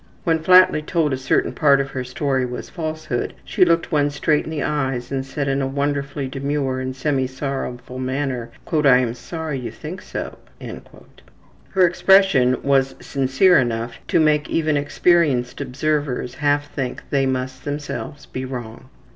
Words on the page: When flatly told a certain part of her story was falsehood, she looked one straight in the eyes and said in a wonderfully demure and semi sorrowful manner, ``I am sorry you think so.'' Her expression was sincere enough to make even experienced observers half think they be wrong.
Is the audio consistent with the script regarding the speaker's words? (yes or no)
no